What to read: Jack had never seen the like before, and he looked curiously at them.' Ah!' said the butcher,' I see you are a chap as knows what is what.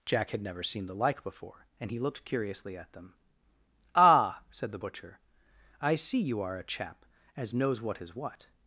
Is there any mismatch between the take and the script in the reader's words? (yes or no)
no